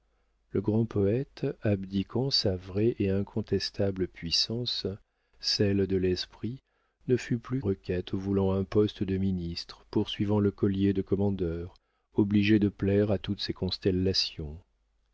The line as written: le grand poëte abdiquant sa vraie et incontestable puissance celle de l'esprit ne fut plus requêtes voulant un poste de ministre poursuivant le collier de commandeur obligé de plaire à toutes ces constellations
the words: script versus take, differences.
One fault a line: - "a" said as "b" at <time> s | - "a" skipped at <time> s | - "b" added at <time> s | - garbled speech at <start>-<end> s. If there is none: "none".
none